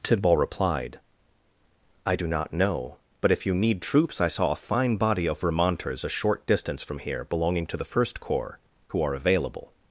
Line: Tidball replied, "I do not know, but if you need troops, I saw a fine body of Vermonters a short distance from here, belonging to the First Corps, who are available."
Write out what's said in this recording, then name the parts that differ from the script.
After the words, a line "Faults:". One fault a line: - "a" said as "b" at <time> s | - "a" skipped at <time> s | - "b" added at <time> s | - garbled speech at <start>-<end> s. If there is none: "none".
Tidball replied, "I do not know, but if you need troops, I saw a fine body of Vermonters a short distance from here, belonging to the First Corps, who are available."
Faults:
none